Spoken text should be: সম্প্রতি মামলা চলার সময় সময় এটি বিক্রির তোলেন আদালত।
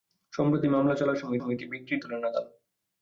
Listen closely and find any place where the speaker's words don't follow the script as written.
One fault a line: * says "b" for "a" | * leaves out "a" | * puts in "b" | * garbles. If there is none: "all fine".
all fine